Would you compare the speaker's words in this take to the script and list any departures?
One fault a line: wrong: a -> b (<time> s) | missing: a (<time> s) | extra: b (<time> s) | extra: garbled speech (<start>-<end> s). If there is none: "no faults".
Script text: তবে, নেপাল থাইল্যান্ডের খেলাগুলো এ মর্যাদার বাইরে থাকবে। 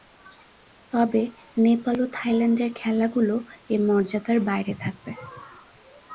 extra: ও (2.0 s)